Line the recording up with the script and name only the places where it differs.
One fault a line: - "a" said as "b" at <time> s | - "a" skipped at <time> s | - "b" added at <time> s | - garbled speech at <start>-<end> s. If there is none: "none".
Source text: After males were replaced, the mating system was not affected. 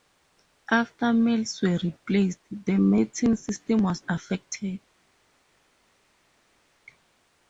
- "not" skipped at 4.1 s